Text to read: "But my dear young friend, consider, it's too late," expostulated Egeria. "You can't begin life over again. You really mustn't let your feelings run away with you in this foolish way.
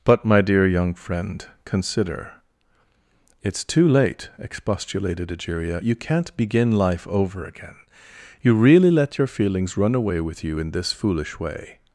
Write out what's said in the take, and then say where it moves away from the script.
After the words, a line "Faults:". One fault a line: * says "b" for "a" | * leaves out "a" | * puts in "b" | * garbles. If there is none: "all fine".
"But my dear young friend, consider, it's too late," expostulated Egeria. "You can't begin life over again. You really let your feelings run away with you in this foolish way.
Faults:
* leaves out "mustn't"